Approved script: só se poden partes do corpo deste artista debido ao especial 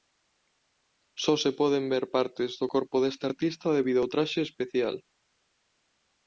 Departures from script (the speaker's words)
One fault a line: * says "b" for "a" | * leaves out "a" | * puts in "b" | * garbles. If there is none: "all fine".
* puts in "ver"
* puts in "traxe"